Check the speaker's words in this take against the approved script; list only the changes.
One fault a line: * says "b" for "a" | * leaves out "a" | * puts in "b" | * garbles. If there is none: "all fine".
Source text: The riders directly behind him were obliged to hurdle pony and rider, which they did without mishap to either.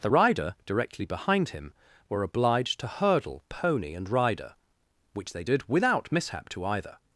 * says "rider" for "riders"